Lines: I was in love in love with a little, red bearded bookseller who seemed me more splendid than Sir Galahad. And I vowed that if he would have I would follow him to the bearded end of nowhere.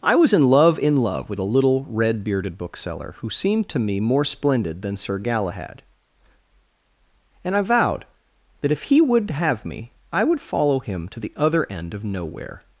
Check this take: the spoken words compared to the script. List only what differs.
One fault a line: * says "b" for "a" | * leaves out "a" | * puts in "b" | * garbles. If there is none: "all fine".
* puts in "to"
* puts in "me"
* says "other" for "bearded"